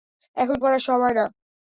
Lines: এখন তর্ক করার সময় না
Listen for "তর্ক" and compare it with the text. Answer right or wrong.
wrong